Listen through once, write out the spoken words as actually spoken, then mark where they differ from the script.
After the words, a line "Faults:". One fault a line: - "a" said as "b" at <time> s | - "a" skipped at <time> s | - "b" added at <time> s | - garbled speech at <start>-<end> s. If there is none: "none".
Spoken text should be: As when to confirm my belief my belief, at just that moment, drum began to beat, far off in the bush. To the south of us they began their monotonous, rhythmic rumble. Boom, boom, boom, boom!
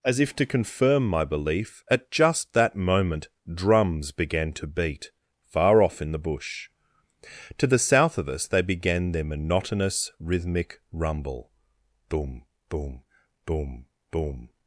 As if to confirm my belief, at just that moment, drums began to beat, far off in the bush. To the south of us they began their monotonous, rhythmic rumble. Boom, boom, boom, boom!
Faults:
- "when" said as "if" at 0.2 s
- "my belief" skipped at 1.8 s
- "drum" said as "drums" at 3.5 s